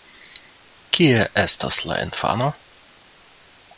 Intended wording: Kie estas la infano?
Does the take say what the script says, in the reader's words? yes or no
yes